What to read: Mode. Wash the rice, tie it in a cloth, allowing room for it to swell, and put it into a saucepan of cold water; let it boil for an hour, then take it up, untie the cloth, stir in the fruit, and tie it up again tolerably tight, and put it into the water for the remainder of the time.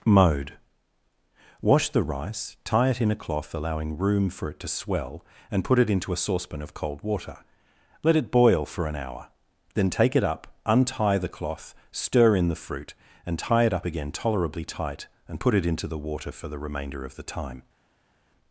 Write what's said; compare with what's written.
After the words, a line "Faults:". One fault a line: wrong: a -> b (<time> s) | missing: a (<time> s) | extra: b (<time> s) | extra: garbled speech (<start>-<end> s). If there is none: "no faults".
Mode. Wash the rice, tie it in a cloth, allowing room for it to swell, and put it into a saucepan of cold water; let it boil for an hour, then take it up, untie the cloth, stir in the fruit, and tie it up again tolerably tight, and put it into the water for the remainder of the time.
Faults:
no faults